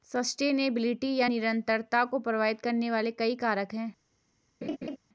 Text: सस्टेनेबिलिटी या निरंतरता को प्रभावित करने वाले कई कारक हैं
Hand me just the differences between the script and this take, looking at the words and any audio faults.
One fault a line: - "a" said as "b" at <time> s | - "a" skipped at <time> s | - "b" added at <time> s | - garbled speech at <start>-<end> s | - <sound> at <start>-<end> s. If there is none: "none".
- laugh at 4.6-5.0 s